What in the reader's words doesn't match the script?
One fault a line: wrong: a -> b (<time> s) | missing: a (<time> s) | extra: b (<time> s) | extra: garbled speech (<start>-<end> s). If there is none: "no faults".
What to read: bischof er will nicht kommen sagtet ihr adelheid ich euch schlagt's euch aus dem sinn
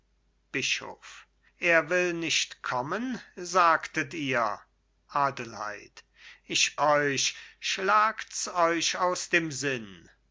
no faults